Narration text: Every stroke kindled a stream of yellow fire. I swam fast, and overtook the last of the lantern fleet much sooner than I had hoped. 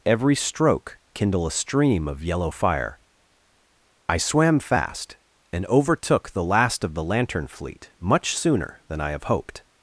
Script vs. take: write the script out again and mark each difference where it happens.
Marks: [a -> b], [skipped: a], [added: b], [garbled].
Every stroke [kindled -> kindle] a stream of yellow fire. I swam fast, and overtook the last of the lantern fleet much sooner than I [had -> have] hoped.